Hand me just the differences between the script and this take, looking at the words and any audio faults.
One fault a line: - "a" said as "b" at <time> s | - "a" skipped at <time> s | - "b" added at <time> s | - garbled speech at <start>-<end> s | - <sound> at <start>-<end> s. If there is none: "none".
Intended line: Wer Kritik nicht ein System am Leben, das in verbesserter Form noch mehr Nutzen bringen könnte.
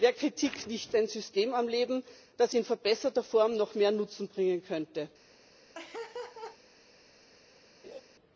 - laugh at 5.7-6.6 s
- laugh at 7.8-8.0 s